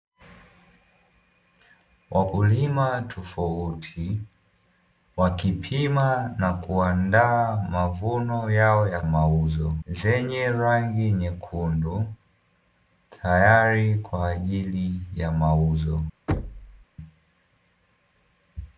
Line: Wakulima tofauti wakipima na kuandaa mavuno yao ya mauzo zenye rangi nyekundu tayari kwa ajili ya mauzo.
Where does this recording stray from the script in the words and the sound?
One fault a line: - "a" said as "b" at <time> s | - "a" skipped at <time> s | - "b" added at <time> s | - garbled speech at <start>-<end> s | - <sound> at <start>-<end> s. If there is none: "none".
- thud at 16.3-16.9 s